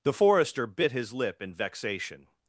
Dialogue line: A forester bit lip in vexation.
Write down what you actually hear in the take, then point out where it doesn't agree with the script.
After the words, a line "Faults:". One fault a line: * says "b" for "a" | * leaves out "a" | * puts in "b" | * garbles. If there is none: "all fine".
The forester bit his lip in vexation.
Faults:
* says "The" for "A"
* puts in "his"